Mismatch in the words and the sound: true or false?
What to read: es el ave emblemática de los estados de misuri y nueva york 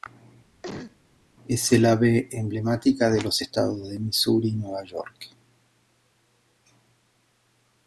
true